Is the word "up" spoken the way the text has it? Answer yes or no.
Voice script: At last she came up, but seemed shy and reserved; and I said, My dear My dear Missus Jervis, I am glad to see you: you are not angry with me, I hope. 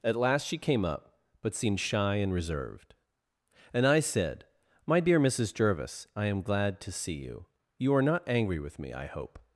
yes